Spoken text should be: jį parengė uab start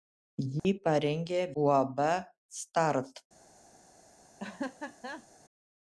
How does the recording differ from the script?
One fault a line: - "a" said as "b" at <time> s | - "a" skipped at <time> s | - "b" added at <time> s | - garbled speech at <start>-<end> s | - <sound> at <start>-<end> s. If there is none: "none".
- dropout at 0.6-0.6 s
- laugh at 4.4-5.3 s